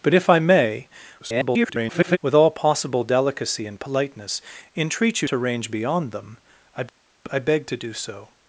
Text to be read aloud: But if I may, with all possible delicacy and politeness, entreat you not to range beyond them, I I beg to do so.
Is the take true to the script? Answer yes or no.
no